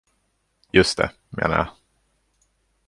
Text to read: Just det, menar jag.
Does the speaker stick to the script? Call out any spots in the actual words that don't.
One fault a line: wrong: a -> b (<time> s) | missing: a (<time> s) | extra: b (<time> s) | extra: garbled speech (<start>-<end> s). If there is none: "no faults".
no faults